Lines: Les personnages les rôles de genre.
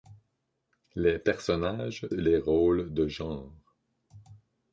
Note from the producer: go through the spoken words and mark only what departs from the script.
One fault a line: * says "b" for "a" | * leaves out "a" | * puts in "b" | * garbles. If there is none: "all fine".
all fine